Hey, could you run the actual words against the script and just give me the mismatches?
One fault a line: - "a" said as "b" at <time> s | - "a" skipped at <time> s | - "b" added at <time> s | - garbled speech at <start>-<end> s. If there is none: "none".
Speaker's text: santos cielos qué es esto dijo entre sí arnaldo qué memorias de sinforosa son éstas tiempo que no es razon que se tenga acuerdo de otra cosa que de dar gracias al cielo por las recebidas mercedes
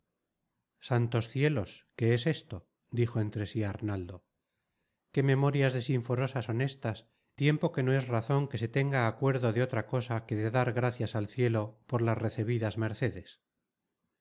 none